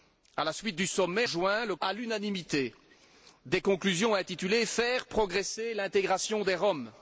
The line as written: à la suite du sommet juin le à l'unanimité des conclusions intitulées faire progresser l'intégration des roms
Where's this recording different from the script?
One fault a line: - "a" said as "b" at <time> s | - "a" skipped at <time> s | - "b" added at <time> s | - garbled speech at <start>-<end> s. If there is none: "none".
none